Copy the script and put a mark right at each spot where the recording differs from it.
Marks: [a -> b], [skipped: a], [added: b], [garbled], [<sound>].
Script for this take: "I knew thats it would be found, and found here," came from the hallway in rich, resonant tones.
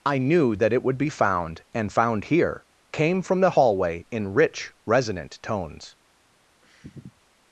"I knew [thats -> that] it would be found, and found here," came from the hallway in rich, resonant tones. [sniff]